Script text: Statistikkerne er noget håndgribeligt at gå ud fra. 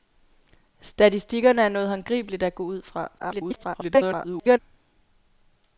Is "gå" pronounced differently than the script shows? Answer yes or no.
no